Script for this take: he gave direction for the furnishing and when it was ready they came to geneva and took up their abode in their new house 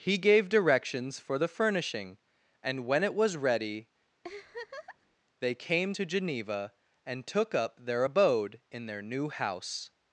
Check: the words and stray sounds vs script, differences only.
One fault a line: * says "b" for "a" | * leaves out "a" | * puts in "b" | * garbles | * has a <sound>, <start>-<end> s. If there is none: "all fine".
* says "directions" for "direction"
* has a laugh, 4.2-5.2 s